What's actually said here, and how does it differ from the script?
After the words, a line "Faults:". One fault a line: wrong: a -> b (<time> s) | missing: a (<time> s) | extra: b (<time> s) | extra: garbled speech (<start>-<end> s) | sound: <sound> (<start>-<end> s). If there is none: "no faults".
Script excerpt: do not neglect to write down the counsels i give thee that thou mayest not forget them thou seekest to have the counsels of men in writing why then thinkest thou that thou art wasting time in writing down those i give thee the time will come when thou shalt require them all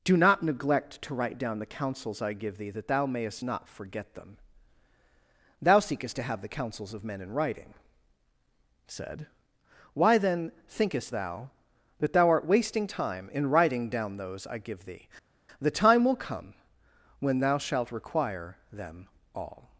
do not neglect to write down the counsels i give thee that thou mayest not forget them thou seekest to have the counsels of men in writing said why then thinkest thou that thou art wasting time in writing down those i give thee the time will come when thou shalt require them all
Faults:
extra: said (8.9 s)